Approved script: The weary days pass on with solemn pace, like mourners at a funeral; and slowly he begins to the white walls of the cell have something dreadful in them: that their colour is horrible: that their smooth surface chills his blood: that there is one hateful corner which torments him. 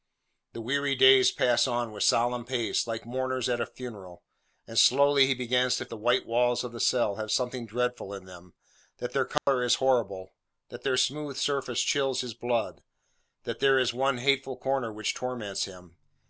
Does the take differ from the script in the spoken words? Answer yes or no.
no